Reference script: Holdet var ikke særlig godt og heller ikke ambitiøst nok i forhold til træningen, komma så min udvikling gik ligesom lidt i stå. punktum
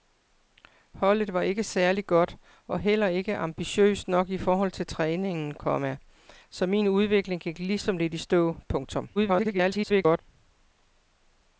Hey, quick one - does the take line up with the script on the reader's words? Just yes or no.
no